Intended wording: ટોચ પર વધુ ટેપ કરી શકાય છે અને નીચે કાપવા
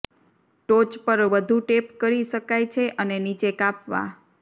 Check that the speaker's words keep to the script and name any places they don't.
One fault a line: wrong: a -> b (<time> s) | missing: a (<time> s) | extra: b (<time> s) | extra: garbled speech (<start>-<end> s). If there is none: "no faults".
no faults